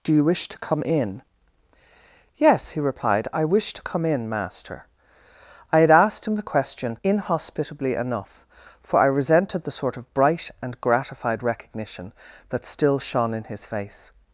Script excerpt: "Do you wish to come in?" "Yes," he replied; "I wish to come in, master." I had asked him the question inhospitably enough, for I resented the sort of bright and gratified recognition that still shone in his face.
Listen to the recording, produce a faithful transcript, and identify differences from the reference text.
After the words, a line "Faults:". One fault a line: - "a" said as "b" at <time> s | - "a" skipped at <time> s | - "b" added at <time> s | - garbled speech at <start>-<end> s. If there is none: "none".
"Do you wish to come in?" "Yes," he replied; "I wish to come in, master." I had asked him the question inhospitably enough, for I resented the sort of bright and gratified recognition that still shone in his face.
Faults:
none